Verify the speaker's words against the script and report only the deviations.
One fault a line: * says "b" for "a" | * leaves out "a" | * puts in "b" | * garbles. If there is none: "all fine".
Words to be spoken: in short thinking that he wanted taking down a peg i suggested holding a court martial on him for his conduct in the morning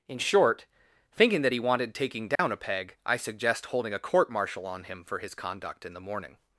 * says "suggest" for "suggested"